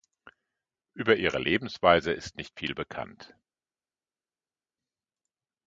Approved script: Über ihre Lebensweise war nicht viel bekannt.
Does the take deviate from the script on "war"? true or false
true